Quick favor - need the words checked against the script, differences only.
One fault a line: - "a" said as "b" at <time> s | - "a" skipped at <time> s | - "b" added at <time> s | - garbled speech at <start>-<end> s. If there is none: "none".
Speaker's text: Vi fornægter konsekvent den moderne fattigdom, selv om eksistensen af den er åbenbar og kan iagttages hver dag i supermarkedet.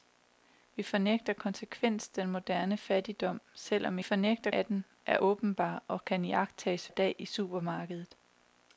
- "eksistensen" said as "fornægter" at 4.0 s
- "hver" skipped at 6.9 s